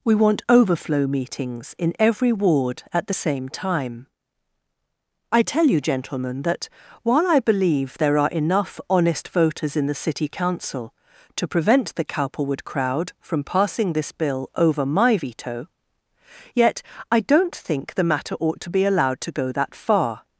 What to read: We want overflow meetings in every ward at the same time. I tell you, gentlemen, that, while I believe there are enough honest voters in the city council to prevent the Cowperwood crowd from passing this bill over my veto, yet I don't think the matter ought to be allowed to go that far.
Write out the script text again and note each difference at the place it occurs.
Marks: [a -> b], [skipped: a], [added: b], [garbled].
We want overflow meetings in every ward at the same time. I tell you, gentlemen, that, while I believe there are enough honest voters in the city council to prevent the Cowperwood crowd from passing this bill over my veto, yet I don't think the matter ought to be allowed to go that far.